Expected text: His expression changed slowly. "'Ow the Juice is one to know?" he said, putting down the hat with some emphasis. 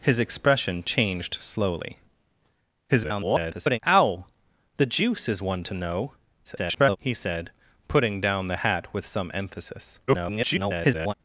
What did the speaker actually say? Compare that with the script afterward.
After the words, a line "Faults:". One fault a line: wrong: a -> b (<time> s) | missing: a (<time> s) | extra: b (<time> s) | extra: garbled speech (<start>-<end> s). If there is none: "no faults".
His expression changed slowly. [garbled] "'Ow the Juice is one to know?" [garbled] he said, putting down the hat with some emphasis. [garbled]
Faults:
extra: garbled speech (2.9-3.8 s)
extra: garbled speech (6.4-7.0 s)
extra: garbled speech (10.1-11.1 s)